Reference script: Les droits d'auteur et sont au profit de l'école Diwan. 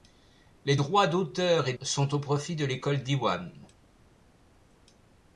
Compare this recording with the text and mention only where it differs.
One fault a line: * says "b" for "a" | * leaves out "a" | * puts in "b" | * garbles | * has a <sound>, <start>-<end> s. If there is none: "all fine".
all fine